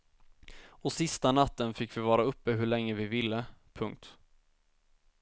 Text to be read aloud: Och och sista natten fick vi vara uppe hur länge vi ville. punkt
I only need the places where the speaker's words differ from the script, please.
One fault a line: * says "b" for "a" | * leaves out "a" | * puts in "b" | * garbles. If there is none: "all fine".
* leaves out "och"